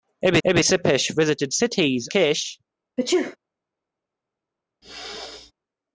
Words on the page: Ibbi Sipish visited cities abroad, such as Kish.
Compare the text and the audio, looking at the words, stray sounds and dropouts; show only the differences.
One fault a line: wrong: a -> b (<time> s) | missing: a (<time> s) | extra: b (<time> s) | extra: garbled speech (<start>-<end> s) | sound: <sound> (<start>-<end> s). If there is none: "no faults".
extra: ibbi (0.5 s)
missing: abroad such as (2.1 s)
sound: sneeze (3.0-3.4 s)
sound: throat clearing (4.8-5.5 s)